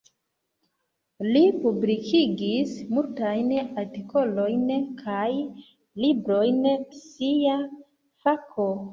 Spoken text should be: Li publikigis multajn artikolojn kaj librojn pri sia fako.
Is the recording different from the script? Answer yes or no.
yes